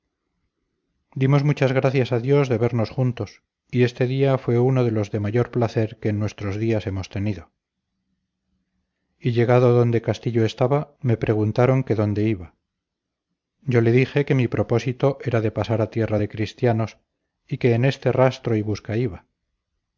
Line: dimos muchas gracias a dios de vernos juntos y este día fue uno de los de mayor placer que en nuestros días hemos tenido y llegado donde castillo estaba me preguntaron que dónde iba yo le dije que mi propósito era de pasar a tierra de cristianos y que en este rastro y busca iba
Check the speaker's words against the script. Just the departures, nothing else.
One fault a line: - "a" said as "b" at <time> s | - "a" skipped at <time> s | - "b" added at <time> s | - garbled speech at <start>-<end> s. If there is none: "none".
none